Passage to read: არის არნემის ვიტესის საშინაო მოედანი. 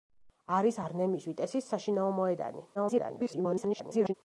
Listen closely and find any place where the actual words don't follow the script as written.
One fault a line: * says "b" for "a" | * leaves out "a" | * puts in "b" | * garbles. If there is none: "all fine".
* garbles